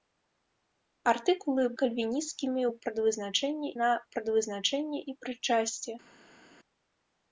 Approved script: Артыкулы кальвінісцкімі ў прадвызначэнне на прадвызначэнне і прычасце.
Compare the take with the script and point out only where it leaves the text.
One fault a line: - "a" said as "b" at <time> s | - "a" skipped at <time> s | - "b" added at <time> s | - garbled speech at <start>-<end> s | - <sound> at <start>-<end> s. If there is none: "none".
none